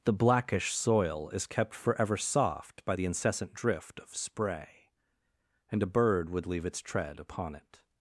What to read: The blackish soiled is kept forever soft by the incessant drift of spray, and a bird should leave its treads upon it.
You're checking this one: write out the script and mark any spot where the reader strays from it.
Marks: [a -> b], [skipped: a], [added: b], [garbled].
The blackish [soiled -> soil] is kept forever soft by the incessant drift of spray, and a bird [should -> would] leave its [treads -> tread] upon it.